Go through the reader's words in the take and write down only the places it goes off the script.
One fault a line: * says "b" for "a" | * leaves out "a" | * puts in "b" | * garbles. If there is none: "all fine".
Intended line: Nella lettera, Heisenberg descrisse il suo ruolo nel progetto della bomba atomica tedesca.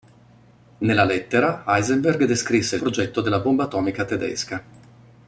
* leaves out "suo ruolo nel"